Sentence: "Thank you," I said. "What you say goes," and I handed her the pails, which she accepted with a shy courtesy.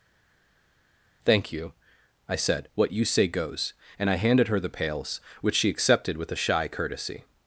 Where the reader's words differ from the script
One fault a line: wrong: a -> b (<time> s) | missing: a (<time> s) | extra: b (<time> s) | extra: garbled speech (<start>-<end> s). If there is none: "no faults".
no faults